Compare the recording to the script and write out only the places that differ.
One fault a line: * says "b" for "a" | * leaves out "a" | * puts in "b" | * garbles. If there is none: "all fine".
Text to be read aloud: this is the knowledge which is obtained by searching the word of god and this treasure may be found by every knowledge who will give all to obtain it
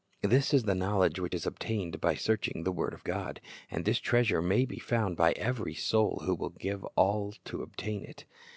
* says "soul" for "knowledge"